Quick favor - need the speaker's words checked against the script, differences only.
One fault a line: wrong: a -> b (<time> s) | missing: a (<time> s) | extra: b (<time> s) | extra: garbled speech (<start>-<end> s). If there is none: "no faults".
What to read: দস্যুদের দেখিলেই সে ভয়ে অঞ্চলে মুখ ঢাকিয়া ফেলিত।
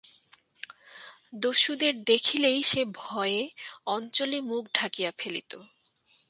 no faults